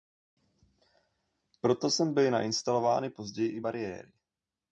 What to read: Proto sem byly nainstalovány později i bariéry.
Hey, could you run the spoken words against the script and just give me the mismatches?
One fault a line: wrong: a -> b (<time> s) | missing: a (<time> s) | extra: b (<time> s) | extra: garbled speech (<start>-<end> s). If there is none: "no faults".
no faults